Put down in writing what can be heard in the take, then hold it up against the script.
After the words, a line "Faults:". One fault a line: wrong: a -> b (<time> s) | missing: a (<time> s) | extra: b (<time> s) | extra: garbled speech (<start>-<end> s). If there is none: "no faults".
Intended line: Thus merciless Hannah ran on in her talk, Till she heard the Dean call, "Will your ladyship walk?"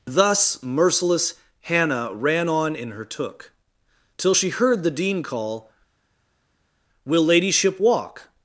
Thus merciless Hannah ran on in her took, Till she heard the Dean call, "Will ladyship walk?"
Faults:
wrong: talk -> took (3.1 s)
missing: your (7.2 s)